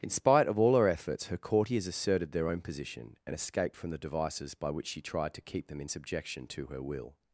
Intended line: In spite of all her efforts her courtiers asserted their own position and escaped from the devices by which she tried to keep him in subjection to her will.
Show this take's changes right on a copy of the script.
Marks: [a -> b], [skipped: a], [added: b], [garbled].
In spite of all her efforts her courtiers asserted their own position and escaped from the devices by which she tried to keep [him -> them] in subjection to her will.